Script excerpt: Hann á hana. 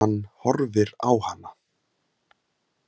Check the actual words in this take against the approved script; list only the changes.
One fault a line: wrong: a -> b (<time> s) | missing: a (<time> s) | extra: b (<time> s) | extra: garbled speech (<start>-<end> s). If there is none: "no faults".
extra: horfir (0.4 s)